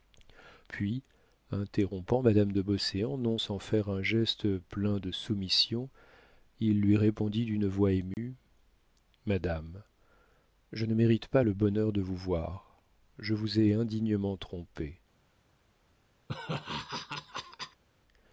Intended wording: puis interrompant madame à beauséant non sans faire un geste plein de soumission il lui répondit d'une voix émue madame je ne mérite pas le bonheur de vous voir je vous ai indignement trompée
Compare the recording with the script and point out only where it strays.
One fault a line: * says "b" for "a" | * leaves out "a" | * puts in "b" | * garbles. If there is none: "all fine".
* says "de" for "à"